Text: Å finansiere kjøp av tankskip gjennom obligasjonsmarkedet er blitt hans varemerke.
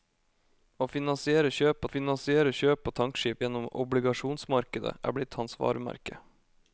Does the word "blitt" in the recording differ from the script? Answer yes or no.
no